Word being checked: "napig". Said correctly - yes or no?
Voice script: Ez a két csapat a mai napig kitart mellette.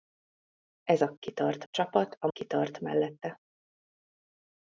no